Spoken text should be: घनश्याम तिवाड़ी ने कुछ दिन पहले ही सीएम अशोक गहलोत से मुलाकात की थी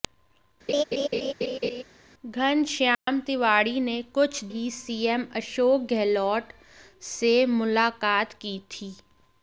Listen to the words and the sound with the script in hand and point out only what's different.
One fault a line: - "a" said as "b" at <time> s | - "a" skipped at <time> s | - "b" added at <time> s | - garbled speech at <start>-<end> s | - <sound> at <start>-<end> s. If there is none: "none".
- laugh at 0.7-1.8 s
- dropout at 2.9-3.1 s
- "दिन पहले" skipped at 4.4 s